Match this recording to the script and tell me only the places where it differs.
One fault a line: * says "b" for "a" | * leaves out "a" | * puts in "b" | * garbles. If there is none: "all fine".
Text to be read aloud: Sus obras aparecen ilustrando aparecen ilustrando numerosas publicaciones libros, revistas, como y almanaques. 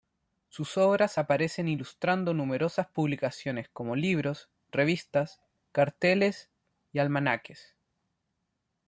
* leaves out "aparecen ilustrando"
* puts in "como"
* says "carteles" for "como"